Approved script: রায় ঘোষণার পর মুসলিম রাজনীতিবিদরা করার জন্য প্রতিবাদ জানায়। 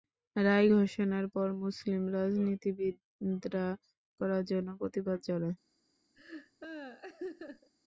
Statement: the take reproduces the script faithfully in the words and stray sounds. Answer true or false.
false